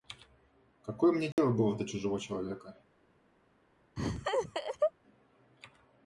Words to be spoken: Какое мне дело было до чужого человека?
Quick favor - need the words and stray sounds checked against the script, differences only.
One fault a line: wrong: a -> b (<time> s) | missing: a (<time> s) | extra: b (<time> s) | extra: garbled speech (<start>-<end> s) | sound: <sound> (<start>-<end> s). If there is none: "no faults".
sound: dropout (1.3-1.4 s)
sound: laugh (4.0-4.9 s)